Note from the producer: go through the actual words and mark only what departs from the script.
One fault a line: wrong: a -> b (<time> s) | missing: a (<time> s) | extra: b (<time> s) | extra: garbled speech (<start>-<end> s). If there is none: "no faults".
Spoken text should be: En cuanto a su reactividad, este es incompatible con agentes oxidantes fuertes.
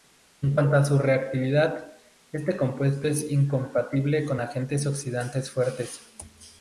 extra: compuesto (2.6 s)